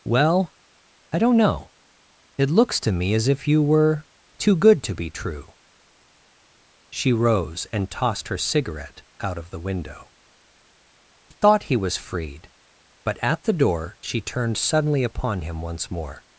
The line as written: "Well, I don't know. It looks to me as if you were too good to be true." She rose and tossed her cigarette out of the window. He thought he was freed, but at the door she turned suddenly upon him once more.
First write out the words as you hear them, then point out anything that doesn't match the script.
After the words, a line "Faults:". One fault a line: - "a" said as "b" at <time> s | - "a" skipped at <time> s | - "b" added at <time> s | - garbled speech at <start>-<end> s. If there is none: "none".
"Well, I don't know. It looks to me as if you were too good to be true." She rose and tossed her cigarette out of the window. Thought he was freed, but at the door she turned suddenly upon him once more.
Faults:
- "He" skipped at 10.1 s